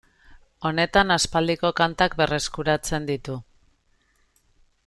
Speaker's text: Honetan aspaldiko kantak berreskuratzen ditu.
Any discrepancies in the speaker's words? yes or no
no